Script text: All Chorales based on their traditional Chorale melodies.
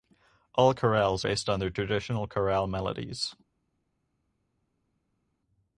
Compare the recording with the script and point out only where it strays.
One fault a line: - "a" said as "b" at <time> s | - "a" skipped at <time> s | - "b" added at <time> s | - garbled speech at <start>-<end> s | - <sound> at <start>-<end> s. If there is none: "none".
none